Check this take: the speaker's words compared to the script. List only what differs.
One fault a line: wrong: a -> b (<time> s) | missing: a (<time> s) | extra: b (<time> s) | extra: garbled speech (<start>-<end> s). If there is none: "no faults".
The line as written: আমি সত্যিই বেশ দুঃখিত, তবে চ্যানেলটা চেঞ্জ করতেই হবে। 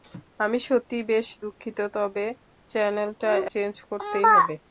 no faults